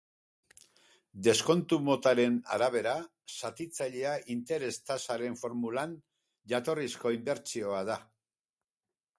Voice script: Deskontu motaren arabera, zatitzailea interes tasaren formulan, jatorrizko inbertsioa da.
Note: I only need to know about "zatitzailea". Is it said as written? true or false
true